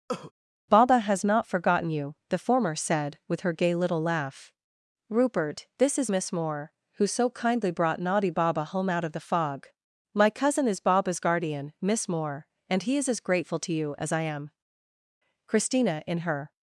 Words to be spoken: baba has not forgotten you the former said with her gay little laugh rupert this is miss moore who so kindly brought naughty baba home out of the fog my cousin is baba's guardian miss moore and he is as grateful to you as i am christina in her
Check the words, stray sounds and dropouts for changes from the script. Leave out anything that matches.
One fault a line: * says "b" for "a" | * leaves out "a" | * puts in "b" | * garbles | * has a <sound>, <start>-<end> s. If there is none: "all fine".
* has a cough, 0.1-0.3 s